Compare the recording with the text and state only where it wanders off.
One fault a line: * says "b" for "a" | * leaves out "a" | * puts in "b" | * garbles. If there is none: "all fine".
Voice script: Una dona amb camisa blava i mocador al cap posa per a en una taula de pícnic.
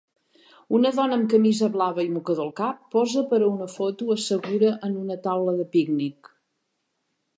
* puts in "una foto assegura"